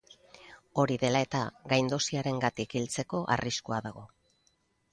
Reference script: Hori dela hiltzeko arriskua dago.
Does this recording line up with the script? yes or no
no